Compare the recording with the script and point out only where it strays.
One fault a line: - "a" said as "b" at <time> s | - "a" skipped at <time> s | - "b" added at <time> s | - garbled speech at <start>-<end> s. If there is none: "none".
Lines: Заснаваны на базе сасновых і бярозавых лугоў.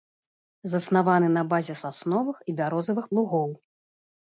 none